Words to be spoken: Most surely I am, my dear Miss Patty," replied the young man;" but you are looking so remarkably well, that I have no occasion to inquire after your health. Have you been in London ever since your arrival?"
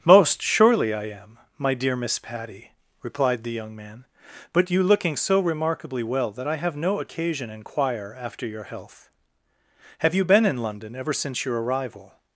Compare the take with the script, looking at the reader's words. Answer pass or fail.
fail